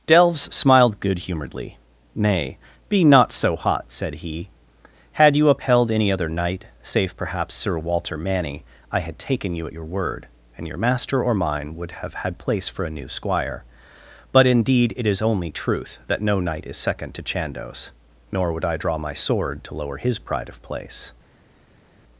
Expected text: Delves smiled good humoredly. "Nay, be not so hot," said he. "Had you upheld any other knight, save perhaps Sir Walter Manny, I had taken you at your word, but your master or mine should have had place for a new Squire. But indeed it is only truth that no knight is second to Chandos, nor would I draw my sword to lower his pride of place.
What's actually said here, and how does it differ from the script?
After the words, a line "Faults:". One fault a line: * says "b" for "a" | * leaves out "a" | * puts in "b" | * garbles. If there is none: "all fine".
Delves smiled good humoredly. "Nay, be not so hot," said he. "Had you upheld any other knight, save perhaps Sir Walter Manny, I had taken you at your word, and your master or mine would have had place for a new Squire. But indeed it is only truth that no knight is second to Chandos, nor would I draw my sword to lower his pride of place.
Faults:
* says "and" for "but"
* says "would" for "should"